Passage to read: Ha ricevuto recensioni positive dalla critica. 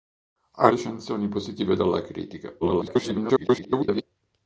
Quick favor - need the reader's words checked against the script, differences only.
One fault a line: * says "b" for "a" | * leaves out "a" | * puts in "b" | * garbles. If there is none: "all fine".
* leaves out "ricevuto"
* garbles